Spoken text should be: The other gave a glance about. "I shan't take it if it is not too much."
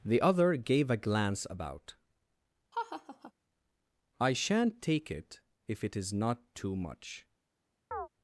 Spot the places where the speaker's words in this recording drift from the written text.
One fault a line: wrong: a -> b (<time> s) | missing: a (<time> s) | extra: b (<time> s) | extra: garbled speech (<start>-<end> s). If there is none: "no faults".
no faults